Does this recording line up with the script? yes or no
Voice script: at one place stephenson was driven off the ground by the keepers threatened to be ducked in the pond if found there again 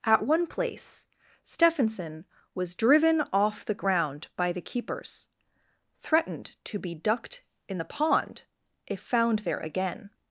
yes